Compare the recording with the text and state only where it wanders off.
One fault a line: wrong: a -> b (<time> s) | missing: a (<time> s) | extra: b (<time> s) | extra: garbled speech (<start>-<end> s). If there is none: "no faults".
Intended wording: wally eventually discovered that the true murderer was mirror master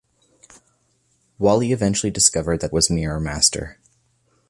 missing: the true murderer (2.7 s)